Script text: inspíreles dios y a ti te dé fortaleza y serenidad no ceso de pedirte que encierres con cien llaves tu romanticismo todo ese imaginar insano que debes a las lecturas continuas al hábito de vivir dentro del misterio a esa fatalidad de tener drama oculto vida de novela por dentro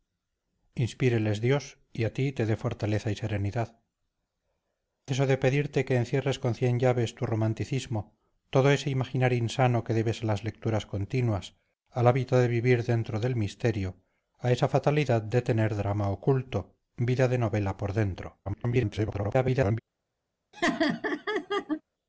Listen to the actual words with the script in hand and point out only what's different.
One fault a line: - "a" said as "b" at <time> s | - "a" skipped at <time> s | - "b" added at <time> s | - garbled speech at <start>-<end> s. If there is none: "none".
- "no" skipped at 3.8 s
- garbled speech at 18.5-19.8 s